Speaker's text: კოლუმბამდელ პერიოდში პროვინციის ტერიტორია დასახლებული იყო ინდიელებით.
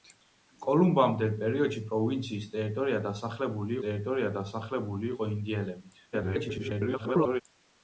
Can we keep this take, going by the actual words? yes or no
no